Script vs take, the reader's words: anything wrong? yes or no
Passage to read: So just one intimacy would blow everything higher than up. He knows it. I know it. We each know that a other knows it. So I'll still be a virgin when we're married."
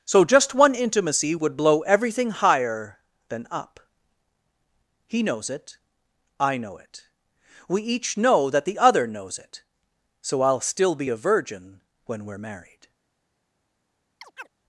yes